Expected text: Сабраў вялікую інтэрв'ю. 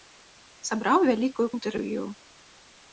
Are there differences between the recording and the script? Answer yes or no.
no